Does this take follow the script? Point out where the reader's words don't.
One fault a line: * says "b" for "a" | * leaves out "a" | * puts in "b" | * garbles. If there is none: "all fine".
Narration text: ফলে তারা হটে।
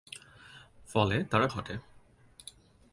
all fine